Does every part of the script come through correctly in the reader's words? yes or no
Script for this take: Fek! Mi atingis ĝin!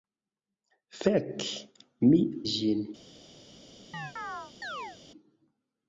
no